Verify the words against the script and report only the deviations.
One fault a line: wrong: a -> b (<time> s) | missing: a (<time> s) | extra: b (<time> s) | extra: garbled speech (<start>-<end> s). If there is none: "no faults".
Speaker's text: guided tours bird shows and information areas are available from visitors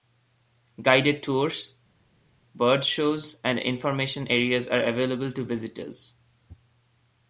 wrong: from -> to (5.3 s)